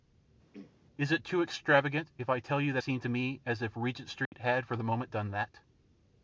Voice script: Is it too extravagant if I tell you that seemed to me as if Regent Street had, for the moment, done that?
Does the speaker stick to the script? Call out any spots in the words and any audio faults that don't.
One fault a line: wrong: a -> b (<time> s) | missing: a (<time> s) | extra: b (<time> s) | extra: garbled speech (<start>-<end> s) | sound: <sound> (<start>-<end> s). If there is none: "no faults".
sound: throat clearing (0.5-0.7 s)
sound: dropout (4.3-4.3 s)